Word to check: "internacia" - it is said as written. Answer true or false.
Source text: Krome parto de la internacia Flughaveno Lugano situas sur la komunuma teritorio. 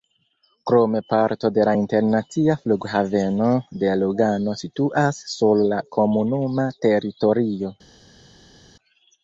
true